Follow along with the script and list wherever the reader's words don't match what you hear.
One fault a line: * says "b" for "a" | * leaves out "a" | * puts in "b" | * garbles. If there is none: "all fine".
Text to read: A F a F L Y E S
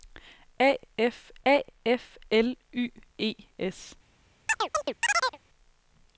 all fine